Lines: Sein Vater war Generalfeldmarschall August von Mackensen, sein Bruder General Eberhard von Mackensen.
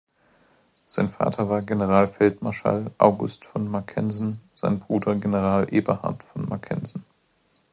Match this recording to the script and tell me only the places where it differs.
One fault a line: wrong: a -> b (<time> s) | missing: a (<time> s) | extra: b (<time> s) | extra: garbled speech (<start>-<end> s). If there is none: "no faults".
no faults